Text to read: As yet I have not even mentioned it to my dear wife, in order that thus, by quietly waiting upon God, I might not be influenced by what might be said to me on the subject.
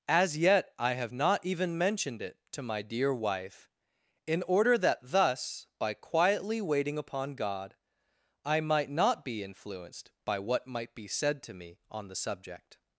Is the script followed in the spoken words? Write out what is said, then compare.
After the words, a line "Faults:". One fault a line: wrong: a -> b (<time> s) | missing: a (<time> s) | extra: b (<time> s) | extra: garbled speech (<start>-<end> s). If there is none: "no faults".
As yet I have not even mentioned it to my dear wife, in order that thus, by quietly waiting upon God, I might not be influenced by what might be said to me on the subject.
Faults:
no faults